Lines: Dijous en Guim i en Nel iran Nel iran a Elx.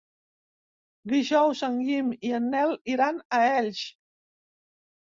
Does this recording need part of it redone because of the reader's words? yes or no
yes